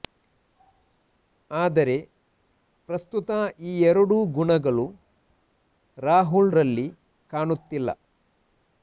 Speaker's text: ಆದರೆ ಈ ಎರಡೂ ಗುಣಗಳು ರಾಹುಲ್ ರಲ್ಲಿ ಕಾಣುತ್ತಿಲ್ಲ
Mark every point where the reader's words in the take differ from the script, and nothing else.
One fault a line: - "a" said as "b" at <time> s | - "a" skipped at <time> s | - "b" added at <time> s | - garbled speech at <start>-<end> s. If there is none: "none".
- "ಪ್ರಸ್ತುತ" added at 2.9 s